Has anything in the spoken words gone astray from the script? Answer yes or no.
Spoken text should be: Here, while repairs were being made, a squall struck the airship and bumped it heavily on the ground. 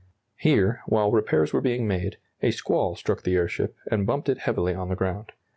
no